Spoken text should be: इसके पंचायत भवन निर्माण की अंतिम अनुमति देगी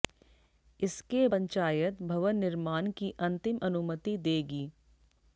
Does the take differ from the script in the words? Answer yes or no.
no